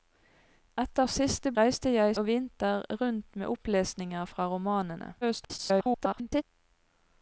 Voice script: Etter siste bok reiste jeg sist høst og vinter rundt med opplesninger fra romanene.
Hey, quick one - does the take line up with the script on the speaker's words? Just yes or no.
no